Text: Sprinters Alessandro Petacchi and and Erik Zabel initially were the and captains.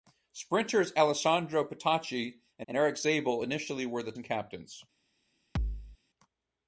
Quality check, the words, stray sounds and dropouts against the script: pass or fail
fail